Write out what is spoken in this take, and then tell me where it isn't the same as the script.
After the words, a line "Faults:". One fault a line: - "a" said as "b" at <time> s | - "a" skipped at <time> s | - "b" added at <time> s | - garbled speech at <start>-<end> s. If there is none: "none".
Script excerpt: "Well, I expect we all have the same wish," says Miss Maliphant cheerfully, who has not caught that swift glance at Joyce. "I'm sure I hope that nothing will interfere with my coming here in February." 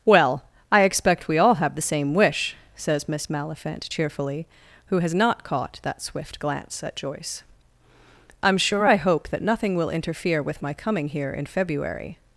"Well, I expect we all have the same wish," says Miss Maliphant cheerfully, who has not caught that swift glance at Joyce. "I'm sure I hope that nothing will interfere with my coming here in February."
Faults:
none